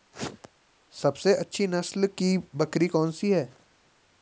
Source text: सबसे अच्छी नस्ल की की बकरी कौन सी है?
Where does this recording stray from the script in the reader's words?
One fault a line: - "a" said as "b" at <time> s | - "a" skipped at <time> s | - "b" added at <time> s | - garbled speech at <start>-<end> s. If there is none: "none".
- "की" skipped at 2.4 s